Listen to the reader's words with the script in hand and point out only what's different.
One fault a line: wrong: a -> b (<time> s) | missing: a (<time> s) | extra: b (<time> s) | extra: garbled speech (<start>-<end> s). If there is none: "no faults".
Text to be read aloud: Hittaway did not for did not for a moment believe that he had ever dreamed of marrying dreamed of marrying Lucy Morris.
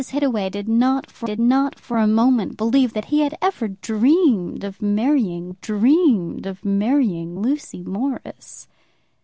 no faults